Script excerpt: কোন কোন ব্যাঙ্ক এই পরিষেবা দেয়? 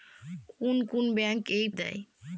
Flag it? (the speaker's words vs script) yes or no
yes